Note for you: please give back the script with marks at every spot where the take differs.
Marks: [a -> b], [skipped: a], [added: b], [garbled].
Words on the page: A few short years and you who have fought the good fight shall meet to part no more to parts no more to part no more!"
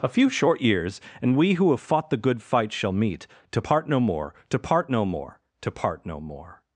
A few short years and [you -> we] who have fought the good fight shall meet to part no more to [parts -> part] no more to part no more!"